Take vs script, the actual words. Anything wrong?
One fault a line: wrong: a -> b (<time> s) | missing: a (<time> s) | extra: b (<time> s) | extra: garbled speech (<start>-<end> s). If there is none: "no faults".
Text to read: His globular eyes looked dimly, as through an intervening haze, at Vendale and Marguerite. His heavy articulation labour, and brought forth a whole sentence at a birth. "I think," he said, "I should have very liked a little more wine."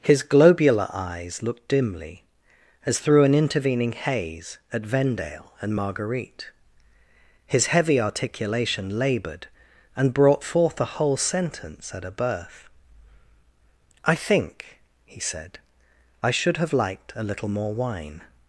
wrong: labour -> laboured (9.0 s)
missing: very (16.7 s)